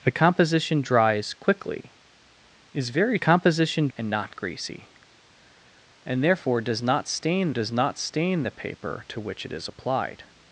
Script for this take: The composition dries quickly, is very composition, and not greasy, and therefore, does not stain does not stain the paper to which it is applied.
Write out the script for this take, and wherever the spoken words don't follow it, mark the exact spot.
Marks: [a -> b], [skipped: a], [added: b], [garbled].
The composition dries quickly, is very composition, and not greasy, and therefore, does not stain does not stain the paper to which it is applied.